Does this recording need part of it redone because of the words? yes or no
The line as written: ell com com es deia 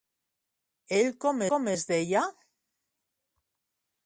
no